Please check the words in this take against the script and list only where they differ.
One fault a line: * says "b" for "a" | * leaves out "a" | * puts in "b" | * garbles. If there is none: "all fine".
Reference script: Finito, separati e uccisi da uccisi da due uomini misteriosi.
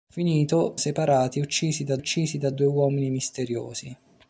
all fine